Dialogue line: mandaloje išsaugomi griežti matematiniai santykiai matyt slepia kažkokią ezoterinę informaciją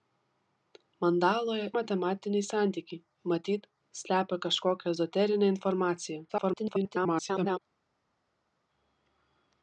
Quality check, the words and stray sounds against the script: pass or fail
fail